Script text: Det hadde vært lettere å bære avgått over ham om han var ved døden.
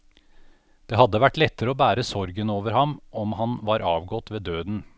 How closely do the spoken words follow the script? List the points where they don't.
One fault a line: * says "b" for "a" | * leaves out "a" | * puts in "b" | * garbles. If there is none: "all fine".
* says "sorgen" for "avgått"
* puts in "avgått"